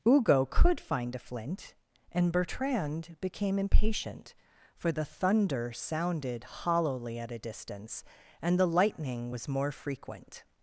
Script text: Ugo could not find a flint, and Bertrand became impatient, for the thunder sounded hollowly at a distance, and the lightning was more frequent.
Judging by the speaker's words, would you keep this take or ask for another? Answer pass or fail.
fail